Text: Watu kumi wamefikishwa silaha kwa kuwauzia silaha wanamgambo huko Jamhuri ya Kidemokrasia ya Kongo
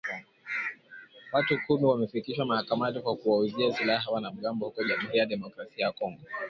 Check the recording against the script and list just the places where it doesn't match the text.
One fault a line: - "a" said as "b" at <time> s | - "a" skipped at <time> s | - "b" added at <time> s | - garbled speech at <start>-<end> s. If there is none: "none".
- "silaha" said as "mahakamani" at 2.5 s